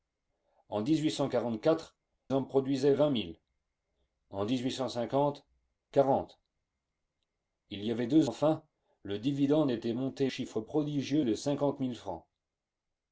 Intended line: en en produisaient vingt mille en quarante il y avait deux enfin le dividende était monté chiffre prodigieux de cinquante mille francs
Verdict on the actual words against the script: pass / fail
pass